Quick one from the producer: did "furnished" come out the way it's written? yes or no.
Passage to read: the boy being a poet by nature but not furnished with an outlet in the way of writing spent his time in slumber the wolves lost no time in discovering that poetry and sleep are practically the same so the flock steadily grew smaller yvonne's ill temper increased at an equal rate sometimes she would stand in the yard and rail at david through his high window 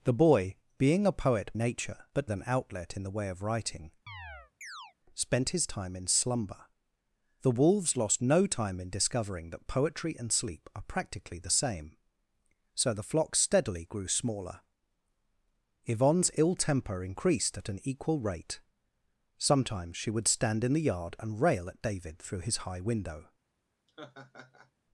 no